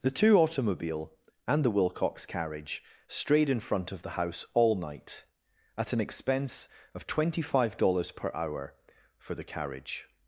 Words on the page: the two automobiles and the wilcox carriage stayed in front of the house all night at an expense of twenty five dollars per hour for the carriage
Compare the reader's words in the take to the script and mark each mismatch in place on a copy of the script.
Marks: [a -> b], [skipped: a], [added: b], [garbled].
the two [automobiles -> automobile] and the wilcox carriage [stayed -> strayed] in front of the house all night at an expense of twenty five dollars per hour for the carriage